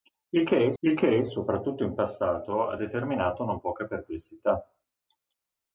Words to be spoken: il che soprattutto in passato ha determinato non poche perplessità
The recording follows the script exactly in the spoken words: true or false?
false